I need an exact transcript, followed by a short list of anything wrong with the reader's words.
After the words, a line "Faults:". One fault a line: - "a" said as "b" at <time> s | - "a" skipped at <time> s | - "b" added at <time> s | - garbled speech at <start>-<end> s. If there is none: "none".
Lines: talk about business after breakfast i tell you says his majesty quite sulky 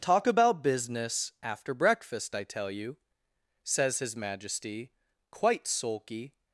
talk about business after breakfast i tell you says his majesty quite sulky
Faults:
none